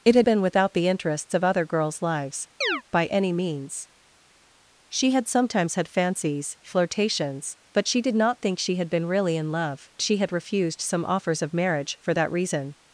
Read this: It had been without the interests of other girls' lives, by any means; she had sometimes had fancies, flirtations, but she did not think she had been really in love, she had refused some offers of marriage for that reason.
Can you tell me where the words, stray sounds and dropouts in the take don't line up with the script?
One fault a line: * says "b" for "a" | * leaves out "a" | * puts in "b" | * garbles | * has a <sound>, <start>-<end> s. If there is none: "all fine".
* has a chirp, 2.6-2.8 s